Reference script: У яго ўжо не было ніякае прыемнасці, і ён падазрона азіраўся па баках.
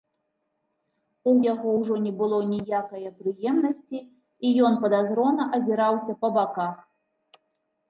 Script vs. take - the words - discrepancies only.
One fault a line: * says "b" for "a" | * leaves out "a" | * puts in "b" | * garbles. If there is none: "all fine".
all fine